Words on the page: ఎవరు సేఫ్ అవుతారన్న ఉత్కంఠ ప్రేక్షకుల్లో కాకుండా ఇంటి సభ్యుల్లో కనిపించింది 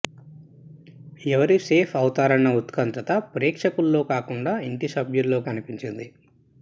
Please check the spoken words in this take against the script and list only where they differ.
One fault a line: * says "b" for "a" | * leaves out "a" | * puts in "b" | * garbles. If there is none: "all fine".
all fine